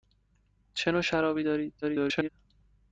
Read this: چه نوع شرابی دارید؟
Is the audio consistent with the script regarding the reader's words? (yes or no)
no